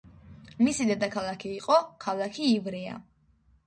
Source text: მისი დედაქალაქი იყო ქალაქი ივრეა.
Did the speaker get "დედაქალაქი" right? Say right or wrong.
right